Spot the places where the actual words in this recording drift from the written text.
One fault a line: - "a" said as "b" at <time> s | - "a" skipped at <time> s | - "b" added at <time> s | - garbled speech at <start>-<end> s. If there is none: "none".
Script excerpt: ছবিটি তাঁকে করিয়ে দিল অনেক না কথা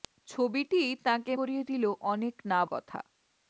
none